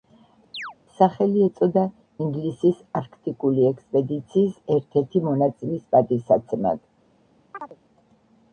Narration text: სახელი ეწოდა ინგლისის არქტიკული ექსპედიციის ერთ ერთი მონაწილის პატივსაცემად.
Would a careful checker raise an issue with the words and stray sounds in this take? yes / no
yes